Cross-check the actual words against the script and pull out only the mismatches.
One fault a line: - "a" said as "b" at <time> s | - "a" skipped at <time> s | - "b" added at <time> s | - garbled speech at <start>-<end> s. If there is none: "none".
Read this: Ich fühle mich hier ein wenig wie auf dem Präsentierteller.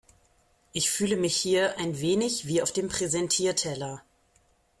none